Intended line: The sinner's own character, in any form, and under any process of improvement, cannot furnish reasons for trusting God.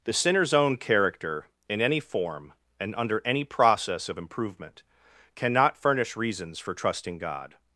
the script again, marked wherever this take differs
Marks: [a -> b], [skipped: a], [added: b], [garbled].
The sinner's own character, in any form, and under any process of improvement, cannot furnish reasons for trusting God.